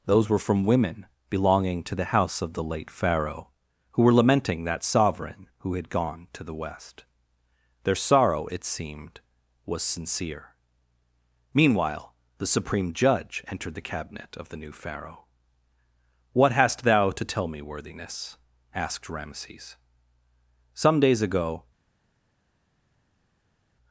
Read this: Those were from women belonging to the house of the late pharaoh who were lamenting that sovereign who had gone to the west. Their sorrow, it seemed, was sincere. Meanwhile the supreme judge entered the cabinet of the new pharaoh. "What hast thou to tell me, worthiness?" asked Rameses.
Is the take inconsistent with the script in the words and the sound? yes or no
yes